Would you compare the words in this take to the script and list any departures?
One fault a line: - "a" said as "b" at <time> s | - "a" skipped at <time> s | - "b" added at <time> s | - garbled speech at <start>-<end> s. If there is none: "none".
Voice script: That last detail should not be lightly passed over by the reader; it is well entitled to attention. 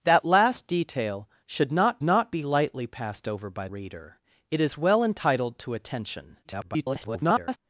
- "not" added at 2.0 s
- "the" skipped at 3.7 s
- garbled speech at 6.4-7.6 s